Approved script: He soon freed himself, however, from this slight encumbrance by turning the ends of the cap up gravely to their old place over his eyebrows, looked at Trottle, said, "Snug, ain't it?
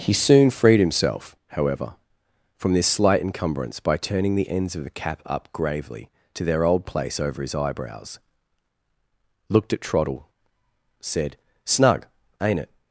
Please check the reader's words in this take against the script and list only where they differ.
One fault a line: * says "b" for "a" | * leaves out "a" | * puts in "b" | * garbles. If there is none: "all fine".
all fine